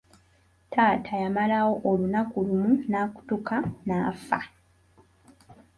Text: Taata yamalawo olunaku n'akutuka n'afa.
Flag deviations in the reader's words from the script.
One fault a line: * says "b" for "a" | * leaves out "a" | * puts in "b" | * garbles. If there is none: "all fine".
* puts in "lumu"